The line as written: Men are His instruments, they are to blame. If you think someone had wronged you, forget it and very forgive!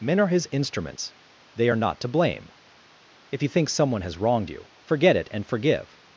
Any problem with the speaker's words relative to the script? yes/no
yes